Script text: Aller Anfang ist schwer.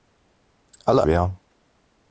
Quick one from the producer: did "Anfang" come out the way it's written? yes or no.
no